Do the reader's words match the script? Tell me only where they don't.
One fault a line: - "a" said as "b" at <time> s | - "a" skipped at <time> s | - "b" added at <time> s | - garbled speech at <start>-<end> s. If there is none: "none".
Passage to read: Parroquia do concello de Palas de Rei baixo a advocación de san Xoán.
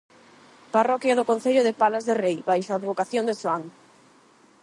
- "san" skipped at 3.4 s